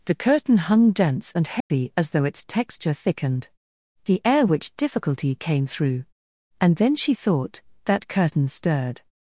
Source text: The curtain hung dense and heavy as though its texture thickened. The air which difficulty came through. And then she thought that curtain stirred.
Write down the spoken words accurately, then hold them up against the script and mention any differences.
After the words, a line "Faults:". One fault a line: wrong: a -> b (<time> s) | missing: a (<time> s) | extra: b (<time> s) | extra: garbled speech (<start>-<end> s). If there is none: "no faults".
The curtain hung dense and heavy as though its texture thickened. The air which difficulty came through. And then she thought that curtain stirred.
Faults:
no faults